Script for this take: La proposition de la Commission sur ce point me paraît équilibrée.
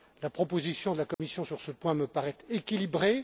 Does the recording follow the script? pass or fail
pass